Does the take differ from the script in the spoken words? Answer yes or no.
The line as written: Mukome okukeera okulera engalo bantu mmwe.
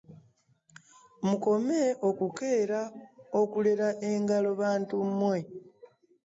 no